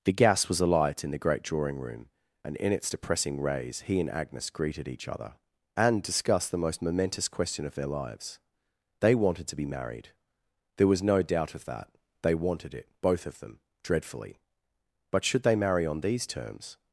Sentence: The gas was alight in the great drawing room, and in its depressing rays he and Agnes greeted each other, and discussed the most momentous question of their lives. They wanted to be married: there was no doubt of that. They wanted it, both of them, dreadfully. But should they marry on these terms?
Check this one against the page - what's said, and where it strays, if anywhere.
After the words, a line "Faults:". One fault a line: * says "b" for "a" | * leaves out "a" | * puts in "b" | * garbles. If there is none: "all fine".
The gas was alight in the great drawing room, and in its depressing rays he and Agnes greeted each other, and discussed the most momentous question of their lives. They wanted to be married: there was no doubt of that. They wanted it, both of them, dreadfully. But should they marry on these terms?
Faults:
all fine